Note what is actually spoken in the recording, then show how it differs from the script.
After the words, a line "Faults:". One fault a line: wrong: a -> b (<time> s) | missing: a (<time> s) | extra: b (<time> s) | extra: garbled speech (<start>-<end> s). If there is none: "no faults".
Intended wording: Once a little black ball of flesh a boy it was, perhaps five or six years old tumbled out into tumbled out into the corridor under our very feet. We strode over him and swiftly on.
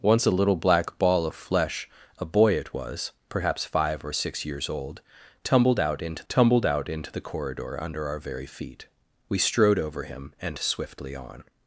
Once a little black ball of flesh a boy it was, perhaps five or six years old tumbled out into tumbled out into the corridor under our very feet. We strode over him and swiftly on.
Faults:
no faults